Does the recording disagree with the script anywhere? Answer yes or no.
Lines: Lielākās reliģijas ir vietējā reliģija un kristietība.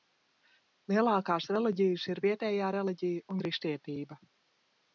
yes